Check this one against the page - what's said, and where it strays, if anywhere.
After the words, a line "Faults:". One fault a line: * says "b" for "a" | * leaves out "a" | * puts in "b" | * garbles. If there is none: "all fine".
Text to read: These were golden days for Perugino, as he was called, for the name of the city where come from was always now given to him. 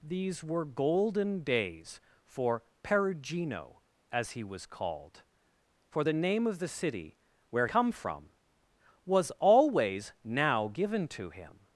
These were golden days for Perugino, as he was called, for the name of the city where come from was always now given to him.
Faults:
all fine